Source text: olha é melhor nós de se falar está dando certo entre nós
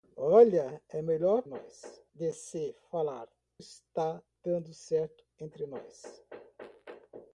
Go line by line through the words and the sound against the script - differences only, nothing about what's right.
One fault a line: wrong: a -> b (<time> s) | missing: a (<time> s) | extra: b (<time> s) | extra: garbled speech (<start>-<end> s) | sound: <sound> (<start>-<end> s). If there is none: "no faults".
no faults